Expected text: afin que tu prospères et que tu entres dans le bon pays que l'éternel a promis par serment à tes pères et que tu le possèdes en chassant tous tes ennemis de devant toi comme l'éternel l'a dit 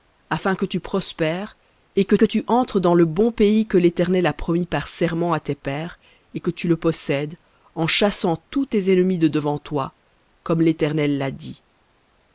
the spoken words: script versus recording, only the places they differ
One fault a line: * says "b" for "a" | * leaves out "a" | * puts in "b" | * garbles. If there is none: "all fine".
* puts in "que"